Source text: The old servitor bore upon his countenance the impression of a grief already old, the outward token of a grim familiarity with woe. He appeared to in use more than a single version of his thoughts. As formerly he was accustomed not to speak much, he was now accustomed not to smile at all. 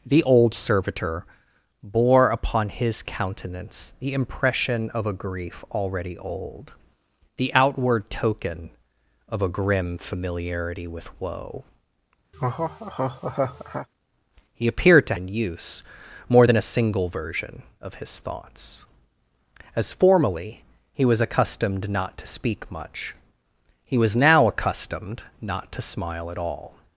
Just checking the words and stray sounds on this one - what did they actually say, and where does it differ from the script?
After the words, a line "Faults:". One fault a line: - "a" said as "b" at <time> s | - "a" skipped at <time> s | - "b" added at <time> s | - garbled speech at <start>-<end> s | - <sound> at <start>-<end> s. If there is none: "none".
The old servitor bore upon his countenance the impression of a grief already old, the outward token of a grim familiarity with woe. He appeared to in use more than a single version of his thoughts. As formerly he was accustomed not to speak much, he was now accustomed not to smile at all.
Faults:
- laugh at 12.3-13.9 s